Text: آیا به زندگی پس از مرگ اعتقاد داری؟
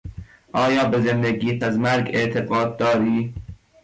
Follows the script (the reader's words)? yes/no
no